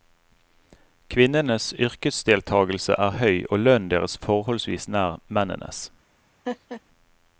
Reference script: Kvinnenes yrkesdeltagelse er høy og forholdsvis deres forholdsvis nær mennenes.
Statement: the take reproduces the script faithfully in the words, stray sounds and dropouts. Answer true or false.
false